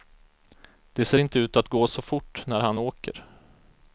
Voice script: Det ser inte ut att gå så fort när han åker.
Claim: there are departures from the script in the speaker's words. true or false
false